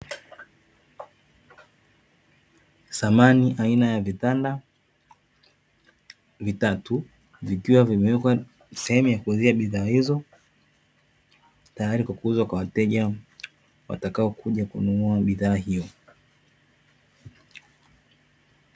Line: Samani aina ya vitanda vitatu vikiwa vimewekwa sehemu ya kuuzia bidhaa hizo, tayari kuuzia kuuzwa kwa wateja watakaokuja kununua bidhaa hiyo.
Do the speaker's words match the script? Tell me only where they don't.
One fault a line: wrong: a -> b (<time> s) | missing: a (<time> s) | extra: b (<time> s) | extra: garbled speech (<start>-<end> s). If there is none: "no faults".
wrong: kuuzia -> kwa (12.0 s)